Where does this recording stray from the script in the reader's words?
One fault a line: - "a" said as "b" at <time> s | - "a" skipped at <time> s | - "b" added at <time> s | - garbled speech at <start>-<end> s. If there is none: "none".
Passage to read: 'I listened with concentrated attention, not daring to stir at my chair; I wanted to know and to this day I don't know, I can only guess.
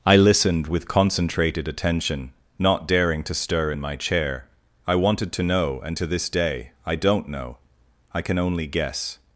- "at" said as "in" at 3.7 s